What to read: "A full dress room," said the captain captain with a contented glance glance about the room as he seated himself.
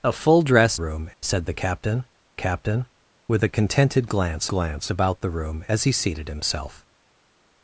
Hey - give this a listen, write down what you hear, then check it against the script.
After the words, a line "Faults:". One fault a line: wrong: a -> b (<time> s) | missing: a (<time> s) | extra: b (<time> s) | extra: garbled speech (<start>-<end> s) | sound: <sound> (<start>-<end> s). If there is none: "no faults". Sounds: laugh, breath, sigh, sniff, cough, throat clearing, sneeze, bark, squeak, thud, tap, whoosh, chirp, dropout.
"A full dress room," said the captain captain with a contented glance glance about the room as he seated himself.
Faults:
no faults